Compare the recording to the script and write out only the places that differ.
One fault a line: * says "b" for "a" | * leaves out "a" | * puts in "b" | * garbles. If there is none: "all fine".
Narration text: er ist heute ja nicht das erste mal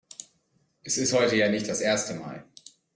* says "es" for "er"